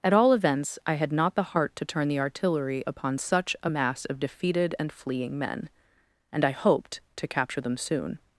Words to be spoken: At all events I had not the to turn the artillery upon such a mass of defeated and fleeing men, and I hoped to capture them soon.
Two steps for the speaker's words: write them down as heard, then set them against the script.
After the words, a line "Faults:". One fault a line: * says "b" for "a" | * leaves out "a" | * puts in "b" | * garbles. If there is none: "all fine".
At all events I had not the heart to turn the artillery upon such a mass of defeated and fleeing men, and I hoped to capture them soon.
Faults:
* puts in "heart"